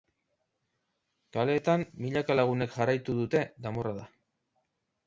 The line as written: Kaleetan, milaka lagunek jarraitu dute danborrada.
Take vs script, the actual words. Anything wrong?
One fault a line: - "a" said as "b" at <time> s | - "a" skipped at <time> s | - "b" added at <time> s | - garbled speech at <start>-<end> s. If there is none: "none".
none